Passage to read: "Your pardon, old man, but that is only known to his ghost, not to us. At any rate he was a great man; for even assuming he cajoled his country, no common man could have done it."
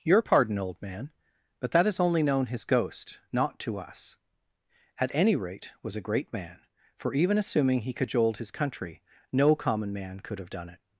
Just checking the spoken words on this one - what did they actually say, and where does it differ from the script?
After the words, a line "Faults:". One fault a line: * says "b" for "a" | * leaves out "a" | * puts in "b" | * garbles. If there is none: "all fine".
"Your pardon, old man, but that is only known his ghost, not to us. At any rate was a great man; for even assuming he cajoled his country, no common man could have done it."
Faults:
* leaves out "to"
* leaves out "he"